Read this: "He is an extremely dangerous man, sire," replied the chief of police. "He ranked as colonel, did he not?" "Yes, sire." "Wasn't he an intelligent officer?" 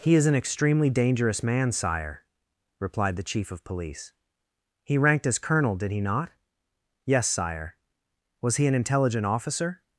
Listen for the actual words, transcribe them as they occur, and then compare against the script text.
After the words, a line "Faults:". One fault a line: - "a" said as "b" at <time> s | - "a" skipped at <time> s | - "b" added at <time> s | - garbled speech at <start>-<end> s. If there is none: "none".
"He is an extremely dangerous man, sire," replied the chief of police. "He ranked as colonel, did he not?" "Yes, sire." "Was he an intelligent officer?"
Faults:
- "Wasn't" said as "Was" at 8.4 s